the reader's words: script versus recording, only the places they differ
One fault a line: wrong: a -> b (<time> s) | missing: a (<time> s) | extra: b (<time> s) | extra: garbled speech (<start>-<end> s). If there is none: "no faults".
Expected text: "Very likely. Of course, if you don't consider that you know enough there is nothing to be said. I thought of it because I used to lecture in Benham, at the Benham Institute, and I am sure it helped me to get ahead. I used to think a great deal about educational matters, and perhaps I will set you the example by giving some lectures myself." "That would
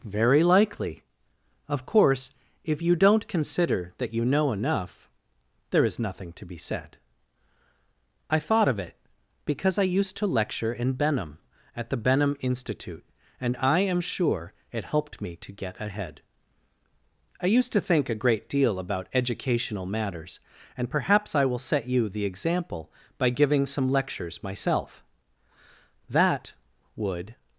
no faults